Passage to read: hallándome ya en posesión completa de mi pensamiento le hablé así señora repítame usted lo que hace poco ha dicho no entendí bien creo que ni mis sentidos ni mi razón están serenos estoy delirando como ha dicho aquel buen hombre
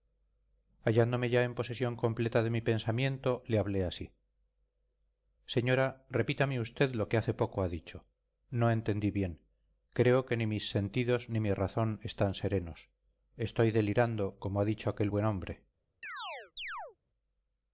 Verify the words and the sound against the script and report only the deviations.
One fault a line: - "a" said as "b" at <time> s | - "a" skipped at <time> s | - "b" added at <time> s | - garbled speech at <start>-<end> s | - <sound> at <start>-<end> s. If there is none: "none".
- chirp at 16.0-17.0 s